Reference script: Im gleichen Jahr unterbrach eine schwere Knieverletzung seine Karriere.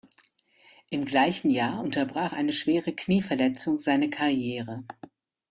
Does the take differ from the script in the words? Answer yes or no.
no